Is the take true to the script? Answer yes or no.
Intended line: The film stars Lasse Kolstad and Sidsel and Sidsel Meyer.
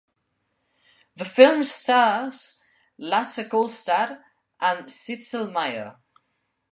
no